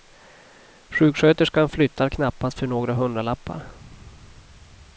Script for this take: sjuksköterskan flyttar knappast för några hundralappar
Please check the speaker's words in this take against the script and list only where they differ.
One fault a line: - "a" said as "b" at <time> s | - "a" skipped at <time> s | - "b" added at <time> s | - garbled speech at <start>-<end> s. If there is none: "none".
none